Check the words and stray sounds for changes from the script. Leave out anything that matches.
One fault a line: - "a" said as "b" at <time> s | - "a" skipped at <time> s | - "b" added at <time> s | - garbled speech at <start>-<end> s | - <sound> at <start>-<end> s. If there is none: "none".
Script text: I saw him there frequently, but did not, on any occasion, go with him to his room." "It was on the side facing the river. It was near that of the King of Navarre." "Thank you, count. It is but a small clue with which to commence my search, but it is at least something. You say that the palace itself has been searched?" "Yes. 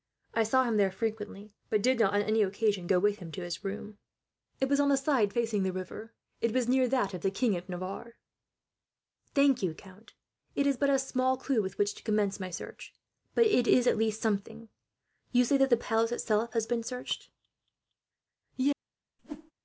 - whoosh at 19.2-19.5 s